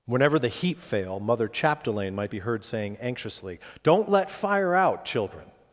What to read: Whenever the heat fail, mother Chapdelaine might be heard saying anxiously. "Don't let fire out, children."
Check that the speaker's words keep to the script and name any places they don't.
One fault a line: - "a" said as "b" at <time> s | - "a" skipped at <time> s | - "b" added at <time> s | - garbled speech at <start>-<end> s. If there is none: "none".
none